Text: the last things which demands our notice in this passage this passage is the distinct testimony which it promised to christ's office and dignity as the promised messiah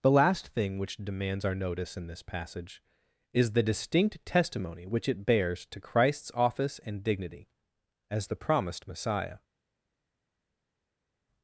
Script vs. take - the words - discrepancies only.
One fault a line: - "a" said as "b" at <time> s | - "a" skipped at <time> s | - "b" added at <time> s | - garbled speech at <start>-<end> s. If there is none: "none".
- "things" said as "thing" at 0.5 s
- "this passage" skipped at 2.8 s
- "promised" said as "bears" at 5.2 s